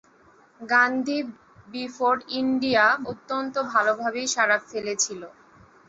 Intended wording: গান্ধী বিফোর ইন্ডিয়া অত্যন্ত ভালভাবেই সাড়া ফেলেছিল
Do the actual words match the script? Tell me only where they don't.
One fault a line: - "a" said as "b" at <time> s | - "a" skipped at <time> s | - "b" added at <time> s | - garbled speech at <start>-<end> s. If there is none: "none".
none